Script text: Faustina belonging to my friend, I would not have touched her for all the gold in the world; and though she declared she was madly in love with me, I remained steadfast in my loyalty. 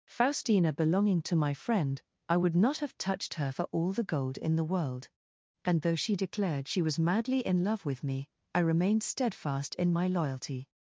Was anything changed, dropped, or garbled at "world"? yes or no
no